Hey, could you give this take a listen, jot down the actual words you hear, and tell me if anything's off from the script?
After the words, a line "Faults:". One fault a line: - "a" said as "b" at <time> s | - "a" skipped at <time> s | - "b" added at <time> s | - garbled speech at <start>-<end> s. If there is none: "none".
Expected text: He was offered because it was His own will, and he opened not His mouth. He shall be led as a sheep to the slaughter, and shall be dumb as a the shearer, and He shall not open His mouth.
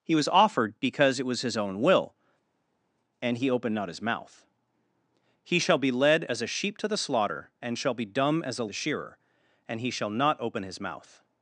He was offered because it was His own will, and he opened not His mouth. He shall be led as a sheep to the slaughter, and shall be dumb as a the shearer, and He shall not open His mouth.
Faults:
none